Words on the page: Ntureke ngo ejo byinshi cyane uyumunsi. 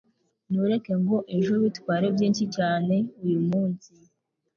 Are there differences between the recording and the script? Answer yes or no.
yes